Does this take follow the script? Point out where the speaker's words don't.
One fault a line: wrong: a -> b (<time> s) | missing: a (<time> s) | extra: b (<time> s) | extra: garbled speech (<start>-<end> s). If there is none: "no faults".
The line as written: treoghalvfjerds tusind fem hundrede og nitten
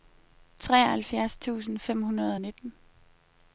no faults